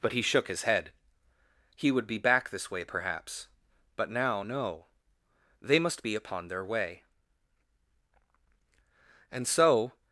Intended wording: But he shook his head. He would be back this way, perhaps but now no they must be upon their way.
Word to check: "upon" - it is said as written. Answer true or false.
true